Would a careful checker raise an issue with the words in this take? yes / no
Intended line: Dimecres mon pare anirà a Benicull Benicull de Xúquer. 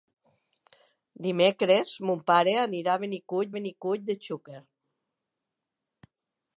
no